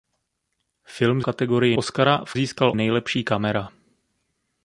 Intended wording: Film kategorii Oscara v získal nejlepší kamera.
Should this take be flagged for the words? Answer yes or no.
no